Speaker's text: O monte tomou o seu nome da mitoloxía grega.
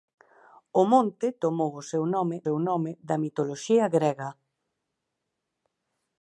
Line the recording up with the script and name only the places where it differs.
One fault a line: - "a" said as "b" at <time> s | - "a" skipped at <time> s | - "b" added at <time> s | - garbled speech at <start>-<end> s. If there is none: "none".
- "seu nome" added at 2.4 s